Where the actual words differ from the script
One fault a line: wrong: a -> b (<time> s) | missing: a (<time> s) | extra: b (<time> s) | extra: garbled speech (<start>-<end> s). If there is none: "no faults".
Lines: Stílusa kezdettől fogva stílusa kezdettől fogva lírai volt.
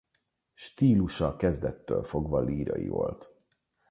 missing: stílusa kezdettől fogva (2.4 s)